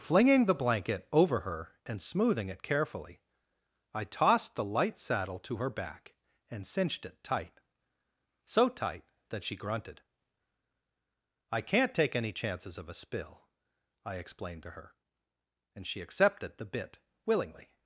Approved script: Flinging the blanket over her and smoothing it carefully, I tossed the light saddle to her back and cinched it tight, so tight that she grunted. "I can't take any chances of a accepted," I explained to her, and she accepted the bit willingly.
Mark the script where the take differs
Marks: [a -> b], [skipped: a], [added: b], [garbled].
Flinging the blanket over her and smoothing it carefully, I tossed the light saddle to her back and cinched it tight, so tight that she grunted. "I can't take any chances of a [accepted," -> spill] I explained to her, and she accepted the bit willingly.